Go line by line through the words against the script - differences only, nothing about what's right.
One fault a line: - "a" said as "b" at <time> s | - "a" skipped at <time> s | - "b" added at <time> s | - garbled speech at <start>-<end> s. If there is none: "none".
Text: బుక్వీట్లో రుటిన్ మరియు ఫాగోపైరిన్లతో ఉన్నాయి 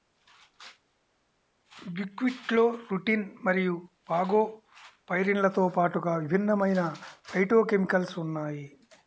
- "పాటుగా విభిన్నమైన ఫైటోకెమికల్స్" added at 5.7 s